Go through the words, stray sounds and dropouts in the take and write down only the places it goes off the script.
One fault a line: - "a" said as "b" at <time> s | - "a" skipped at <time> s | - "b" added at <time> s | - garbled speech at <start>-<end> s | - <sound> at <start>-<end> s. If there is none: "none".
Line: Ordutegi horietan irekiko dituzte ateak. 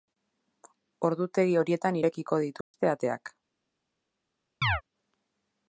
- dropout at 2.6-2.7 s
- chirp at 4.6-4.8 s